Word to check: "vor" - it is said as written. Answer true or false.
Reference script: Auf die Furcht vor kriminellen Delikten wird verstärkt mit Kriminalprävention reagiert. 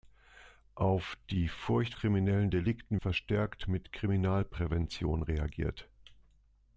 false